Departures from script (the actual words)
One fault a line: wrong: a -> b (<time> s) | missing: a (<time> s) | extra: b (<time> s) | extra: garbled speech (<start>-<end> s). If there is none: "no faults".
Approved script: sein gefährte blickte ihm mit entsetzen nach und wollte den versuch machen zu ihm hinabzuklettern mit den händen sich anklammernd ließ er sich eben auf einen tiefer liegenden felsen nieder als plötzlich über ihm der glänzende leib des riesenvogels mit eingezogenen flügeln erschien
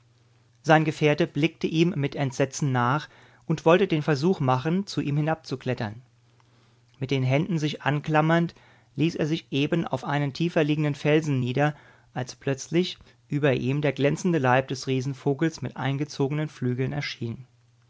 no faults